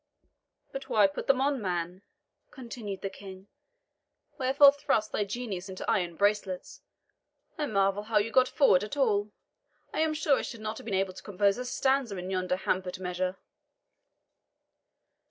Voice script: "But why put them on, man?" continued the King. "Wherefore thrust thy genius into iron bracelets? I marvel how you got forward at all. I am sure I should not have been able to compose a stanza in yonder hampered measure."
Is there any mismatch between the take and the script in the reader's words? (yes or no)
no